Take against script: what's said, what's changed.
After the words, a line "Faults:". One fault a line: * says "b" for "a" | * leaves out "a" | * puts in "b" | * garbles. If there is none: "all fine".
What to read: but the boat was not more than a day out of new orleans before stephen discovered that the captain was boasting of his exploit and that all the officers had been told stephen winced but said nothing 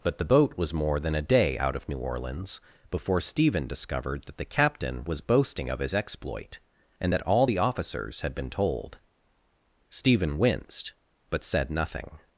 but the boat was more than a day out of new orleans before stephen discovered that the captain was boasting of his exploit and that all the officers had been told stephen winced but said nothing
Faults:
* leaves out "not"